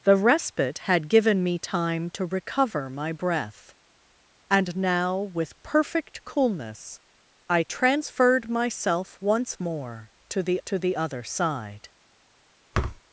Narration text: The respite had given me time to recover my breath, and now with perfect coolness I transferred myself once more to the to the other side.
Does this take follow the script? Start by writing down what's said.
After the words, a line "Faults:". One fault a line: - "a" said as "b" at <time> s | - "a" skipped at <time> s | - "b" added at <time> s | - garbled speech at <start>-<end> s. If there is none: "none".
The respite had given me time to recover my breath, and now with perfect coolness I transferred myself once more to the to the other side.
Faults:
none